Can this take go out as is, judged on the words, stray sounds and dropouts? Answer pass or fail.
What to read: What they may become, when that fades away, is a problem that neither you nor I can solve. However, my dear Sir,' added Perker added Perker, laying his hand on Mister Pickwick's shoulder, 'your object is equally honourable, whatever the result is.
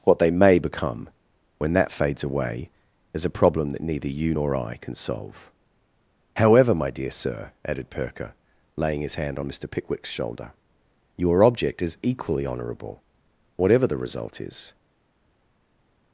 fail